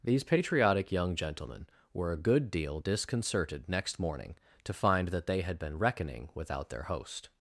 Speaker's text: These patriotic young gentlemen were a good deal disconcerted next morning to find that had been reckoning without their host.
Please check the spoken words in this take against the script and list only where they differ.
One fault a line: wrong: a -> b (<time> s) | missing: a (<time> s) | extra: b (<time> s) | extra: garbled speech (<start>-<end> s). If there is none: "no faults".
extra: they (5.3 s)